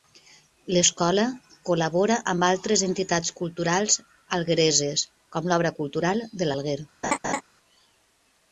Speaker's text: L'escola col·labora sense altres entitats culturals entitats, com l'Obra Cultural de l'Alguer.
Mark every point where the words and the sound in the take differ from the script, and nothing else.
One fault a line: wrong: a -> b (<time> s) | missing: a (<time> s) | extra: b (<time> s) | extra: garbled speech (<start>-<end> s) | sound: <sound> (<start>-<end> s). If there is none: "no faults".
wrong: sense -> amb (2.3 s)
wrong: entitats -> alguereses (4.4 s)
sound: laugh (7.0-7.4 s)